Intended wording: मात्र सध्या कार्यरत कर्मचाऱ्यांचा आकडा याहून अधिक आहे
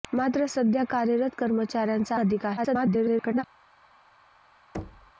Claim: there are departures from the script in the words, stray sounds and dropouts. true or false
true